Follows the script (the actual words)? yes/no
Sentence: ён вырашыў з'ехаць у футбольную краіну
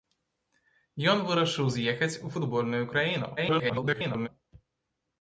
no